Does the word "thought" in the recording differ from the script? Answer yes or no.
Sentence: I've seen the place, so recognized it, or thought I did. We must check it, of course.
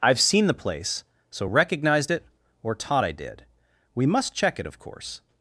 yes